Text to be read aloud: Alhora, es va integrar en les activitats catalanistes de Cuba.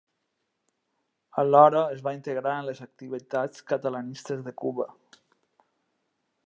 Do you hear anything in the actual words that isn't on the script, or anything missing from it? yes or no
no